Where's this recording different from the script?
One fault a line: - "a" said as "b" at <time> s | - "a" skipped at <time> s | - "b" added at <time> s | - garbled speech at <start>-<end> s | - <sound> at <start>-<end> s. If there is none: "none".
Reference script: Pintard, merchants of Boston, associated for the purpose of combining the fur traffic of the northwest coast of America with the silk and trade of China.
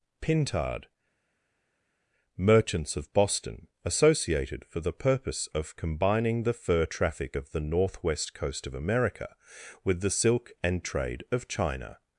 none